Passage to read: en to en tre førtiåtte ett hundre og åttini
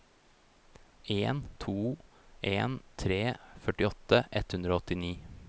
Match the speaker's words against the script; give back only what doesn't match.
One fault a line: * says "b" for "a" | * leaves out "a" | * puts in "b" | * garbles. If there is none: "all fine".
all fine